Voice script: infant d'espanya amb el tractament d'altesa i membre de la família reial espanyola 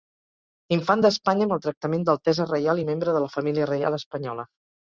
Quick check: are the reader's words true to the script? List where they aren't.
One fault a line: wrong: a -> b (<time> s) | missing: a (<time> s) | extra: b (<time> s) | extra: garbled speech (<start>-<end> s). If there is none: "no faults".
extra: reial (2.5 s)